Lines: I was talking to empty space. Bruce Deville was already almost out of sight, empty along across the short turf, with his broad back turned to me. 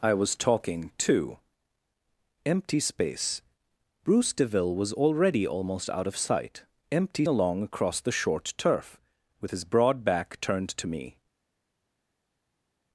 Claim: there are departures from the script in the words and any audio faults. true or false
false